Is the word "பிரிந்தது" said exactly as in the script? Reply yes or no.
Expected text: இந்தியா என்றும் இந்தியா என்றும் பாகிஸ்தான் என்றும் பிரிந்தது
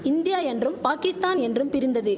yes